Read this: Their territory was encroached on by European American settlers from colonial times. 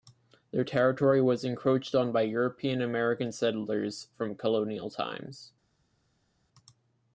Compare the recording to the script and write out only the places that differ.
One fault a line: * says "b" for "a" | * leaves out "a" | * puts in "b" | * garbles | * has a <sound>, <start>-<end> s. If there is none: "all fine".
all fine